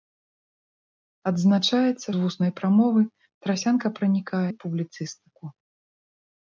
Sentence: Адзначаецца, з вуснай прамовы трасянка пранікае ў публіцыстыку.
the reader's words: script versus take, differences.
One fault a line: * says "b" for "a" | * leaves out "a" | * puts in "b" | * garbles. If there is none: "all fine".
all fine